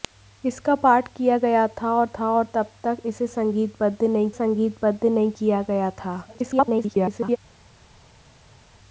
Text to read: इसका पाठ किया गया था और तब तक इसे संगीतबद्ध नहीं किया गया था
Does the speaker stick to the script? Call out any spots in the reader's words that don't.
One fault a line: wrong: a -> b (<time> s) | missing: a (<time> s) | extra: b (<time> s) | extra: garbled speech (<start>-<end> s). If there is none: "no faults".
extra: था और (2.2 s)
extra: संगीतबद्ध नहीं (4.3 s)
extra: garbled speech (6.3-7.4 s)